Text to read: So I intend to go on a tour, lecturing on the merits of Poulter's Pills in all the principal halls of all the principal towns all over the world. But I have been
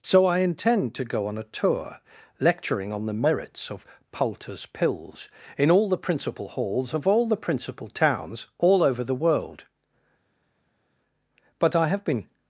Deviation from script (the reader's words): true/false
false